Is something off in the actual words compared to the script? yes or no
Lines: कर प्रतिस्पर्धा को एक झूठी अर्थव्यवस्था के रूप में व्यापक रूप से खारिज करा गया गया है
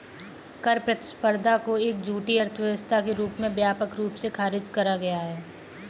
yes